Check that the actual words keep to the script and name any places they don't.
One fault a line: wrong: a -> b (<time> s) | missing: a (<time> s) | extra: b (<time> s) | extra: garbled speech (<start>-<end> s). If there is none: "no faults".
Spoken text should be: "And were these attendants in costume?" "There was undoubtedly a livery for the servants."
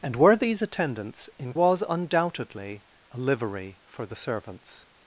missing: costume There (1.5 s)